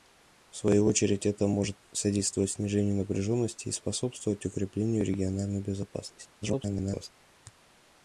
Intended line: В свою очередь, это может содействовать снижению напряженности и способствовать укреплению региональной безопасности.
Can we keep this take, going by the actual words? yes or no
no